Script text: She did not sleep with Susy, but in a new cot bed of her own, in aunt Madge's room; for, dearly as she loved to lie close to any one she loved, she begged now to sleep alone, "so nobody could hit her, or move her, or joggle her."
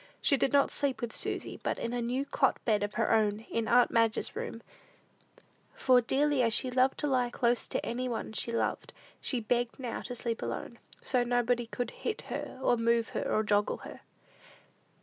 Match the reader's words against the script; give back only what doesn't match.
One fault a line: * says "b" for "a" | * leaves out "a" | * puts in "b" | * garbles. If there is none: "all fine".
all fine